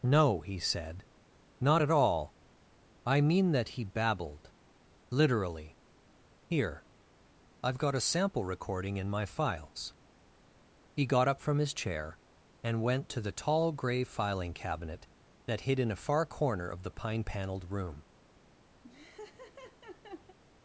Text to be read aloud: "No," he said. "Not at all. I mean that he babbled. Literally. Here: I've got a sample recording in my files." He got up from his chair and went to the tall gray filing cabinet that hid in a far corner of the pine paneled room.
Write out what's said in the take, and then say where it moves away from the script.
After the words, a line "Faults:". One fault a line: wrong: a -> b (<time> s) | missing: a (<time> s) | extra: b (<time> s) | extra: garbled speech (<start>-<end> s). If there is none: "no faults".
"No," he said. "Not at all. I mean that he babbled. Literally. Here: I've got a sample recording in my files." He got up from his chair and went to the tall gray filing cabinet that hid in a far corner of the pine paneled room.
Faults:
no faults